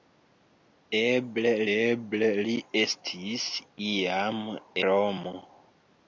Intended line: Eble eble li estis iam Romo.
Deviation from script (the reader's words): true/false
false